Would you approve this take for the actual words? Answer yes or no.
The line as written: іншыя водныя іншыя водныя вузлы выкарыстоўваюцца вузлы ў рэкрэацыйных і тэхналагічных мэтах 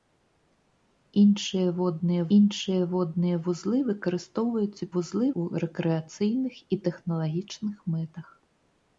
yes